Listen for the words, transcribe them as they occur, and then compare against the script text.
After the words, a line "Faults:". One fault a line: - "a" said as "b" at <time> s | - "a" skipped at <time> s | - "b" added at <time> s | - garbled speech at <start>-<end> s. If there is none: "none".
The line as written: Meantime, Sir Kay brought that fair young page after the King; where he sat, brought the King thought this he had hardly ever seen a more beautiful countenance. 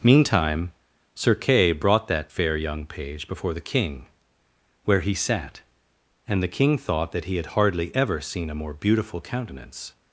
Meantime, Sir Kay brought that fair young page before the King; where he sat, and the King thought that he had hardly ever seen a more beautiful countenance.
Faults:
- "after" said as "before" at 3.3 s
- "brought" said as "and" at 6.2 s
- "this" said as "that" at 7.1 s